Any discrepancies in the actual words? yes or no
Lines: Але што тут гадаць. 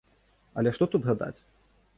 no